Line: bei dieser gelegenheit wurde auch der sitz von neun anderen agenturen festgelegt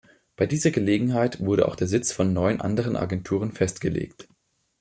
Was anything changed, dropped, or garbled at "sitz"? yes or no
no